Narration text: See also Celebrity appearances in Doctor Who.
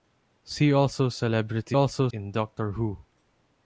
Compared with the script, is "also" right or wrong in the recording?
right